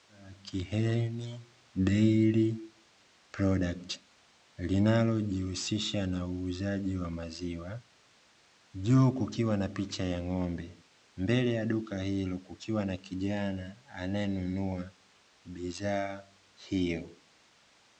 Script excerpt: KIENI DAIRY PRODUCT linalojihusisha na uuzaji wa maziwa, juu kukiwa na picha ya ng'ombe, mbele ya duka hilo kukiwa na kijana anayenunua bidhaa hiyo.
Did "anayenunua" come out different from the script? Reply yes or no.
no